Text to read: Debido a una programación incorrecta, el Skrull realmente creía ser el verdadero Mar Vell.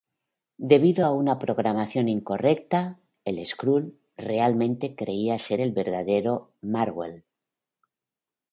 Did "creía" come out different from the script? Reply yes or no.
no